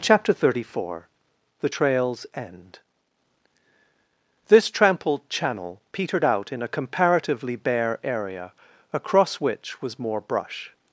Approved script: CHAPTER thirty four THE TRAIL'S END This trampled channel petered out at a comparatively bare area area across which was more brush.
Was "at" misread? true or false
true